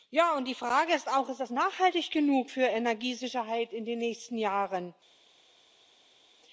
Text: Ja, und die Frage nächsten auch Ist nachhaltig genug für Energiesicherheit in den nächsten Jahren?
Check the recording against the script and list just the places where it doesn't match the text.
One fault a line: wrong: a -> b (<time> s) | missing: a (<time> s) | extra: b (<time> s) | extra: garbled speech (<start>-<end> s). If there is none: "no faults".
wrong: nächsten -> ist (0.9 s)
extra: das (1.4 s)